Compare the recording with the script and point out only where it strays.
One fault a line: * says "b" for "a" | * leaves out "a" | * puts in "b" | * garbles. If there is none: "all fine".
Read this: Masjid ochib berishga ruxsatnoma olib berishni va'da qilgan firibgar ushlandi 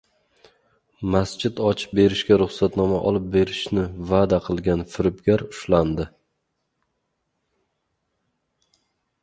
all fine